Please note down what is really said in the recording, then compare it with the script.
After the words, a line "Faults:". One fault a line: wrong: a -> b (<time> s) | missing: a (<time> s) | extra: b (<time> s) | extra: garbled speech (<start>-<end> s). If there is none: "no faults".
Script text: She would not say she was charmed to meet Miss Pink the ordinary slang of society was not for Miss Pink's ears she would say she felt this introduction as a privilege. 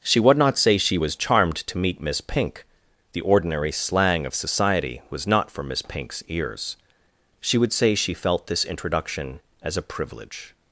She would not say she was charmed to meet Miss Pink the ordinary slang of society was not for Miss Pink's ears she would say she felt this introduction as a privilege.
Faults:
no faults